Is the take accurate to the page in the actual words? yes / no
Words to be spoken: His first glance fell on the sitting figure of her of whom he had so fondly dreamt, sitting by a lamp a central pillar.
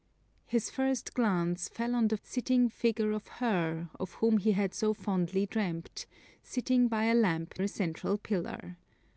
yes